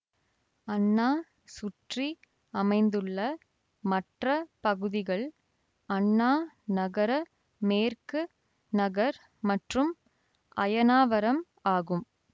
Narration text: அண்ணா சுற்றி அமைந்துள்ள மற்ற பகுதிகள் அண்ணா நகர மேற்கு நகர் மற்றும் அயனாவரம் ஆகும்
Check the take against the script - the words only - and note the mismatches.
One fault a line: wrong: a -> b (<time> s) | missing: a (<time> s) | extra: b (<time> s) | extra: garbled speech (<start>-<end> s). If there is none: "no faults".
no faults